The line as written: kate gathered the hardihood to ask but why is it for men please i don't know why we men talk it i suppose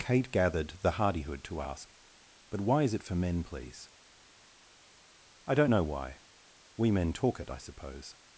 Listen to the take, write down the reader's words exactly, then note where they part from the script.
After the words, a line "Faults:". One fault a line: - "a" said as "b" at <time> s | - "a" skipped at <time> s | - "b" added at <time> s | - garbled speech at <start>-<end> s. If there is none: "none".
kate gathered the hardihood to ask but why is it for men please i don't know why we men talk it i suppose
Faults:
none